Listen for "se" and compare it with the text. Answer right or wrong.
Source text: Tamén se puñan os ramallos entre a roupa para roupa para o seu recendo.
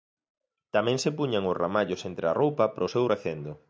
right